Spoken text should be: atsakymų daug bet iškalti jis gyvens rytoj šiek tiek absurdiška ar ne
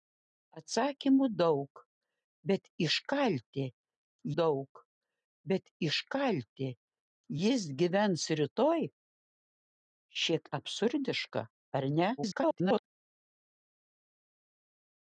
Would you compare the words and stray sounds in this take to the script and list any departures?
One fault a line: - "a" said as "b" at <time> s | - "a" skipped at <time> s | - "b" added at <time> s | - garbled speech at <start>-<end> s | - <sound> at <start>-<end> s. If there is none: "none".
- "daug bet iškalti" added at 4.4 s
- "tiek" skipped at 10.5 s
- garbled speech at 12.2-12.8 s